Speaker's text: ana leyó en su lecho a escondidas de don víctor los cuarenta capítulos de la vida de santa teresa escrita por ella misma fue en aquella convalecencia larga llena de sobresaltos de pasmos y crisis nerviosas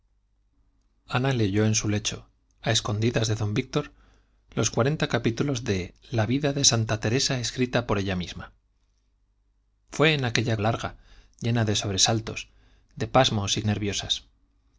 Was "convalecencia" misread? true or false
true